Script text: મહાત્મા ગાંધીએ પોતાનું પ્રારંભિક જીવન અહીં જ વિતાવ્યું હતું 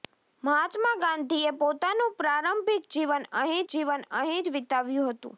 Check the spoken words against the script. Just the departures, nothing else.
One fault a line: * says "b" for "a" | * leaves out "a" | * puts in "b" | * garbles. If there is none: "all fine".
* puts in "જીવન અહીં"